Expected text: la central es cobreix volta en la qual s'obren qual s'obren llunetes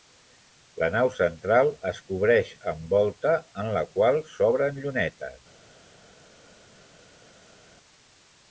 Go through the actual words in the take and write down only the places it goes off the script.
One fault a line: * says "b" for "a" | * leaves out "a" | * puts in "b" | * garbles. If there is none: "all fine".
* puts in "nau"
* puts in "amb"
* leaves out "qual s'obren"